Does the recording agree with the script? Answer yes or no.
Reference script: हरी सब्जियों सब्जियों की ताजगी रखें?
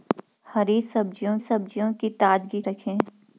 yes